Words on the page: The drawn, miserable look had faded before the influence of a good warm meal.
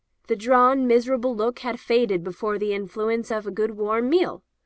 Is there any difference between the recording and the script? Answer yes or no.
no